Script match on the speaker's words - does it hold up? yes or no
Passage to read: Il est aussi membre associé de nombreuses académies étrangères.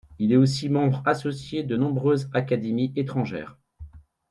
yes